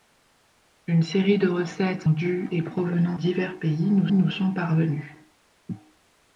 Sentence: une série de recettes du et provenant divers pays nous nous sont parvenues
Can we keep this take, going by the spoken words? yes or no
yes